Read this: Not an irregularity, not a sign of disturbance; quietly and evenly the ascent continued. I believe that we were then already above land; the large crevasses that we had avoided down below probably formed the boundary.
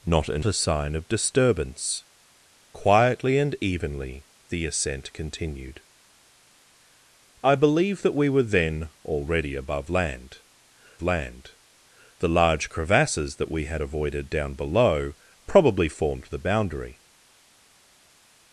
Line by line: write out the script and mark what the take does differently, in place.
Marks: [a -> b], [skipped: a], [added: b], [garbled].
Not an [skipped: irregularity, not] a sign of disturbance; quietly and evenly the ascent continued. I believe that we were then already above land; [added: land] the large crevasses that we had avoided down below probably formed the boundary.